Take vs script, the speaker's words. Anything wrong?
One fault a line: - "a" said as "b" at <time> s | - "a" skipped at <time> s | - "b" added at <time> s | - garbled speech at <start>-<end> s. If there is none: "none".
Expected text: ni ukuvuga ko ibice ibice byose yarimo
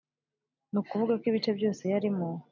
- "ibice" skipped at 1.5 s